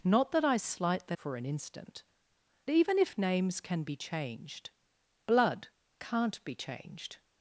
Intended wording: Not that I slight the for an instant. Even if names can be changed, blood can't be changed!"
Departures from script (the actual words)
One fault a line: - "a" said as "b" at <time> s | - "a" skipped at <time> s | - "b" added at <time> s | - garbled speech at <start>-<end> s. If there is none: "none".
none